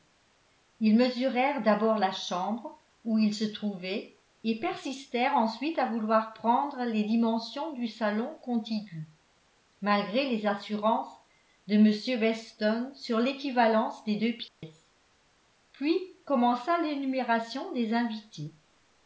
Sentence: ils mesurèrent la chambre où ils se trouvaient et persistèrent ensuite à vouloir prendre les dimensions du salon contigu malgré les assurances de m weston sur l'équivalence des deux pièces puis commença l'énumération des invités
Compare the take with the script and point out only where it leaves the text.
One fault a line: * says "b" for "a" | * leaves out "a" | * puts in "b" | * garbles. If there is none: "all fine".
* puts in "d'abord"